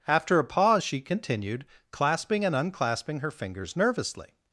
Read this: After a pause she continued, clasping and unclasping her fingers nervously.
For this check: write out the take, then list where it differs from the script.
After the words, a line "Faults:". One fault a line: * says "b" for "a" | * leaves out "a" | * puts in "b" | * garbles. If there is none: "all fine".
After a pause she continued, clasping and unclasping her fingers nervously.
Faults:
all fine